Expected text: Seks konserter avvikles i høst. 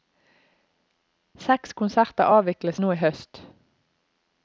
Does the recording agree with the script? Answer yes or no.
no